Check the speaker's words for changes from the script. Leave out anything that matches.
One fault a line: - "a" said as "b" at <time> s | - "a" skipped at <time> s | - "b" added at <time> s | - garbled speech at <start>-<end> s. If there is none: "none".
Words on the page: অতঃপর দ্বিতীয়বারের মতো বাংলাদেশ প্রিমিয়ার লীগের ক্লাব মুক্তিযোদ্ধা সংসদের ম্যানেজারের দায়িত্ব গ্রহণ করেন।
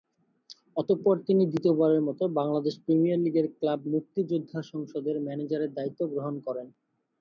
- "তিনি" added at 1.3 s